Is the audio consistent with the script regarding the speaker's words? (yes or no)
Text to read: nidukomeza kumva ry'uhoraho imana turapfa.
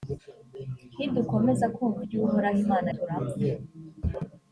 yes